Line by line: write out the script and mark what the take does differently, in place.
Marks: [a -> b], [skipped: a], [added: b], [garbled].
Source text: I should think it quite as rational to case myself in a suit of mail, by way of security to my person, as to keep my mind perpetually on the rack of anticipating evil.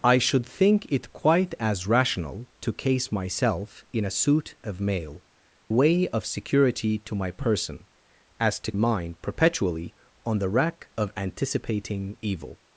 I should think it quite as rational to case myself in a suit of mail, [skipped: by] way of security to my person, as to [skipped: keep my] mind perpetually on the rack of anticipating evil.